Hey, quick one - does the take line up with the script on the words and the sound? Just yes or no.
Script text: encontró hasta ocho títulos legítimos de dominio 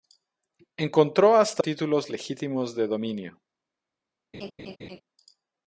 no